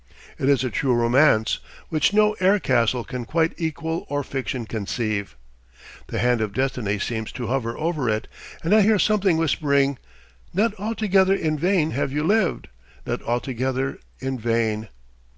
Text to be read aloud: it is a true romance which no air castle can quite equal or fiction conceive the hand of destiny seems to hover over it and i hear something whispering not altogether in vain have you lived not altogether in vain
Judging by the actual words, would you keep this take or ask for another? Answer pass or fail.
pass